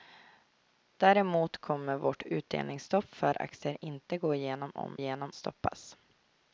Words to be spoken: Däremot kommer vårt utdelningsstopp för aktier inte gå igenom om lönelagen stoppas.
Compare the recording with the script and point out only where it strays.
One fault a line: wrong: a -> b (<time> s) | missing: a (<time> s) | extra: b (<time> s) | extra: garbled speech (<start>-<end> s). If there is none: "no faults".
wrong: lönelagen -> igenom (4.9 s)